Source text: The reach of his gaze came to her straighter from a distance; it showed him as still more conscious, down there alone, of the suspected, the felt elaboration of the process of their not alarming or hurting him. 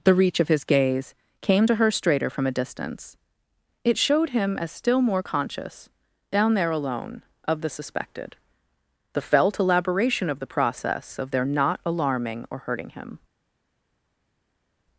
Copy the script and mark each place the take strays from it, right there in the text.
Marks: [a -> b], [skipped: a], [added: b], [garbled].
The reach of his gaze came to her straighter from a distance; it showed him as still more conscious, down there alone, of the suspected, the felt elaboration of the process of their not alarming or hurting him.